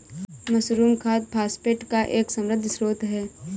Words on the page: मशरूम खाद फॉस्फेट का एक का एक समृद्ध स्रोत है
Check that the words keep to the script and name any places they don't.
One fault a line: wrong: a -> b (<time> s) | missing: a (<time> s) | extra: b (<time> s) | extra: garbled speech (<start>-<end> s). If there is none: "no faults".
missing: का एक (2.3 s)